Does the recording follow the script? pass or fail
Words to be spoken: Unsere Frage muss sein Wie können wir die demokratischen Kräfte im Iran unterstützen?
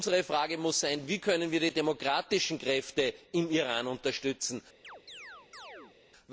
pass